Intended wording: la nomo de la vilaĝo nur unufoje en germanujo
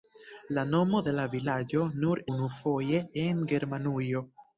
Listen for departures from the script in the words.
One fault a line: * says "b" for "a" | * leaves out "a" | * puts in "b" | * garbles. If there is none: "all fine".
all fine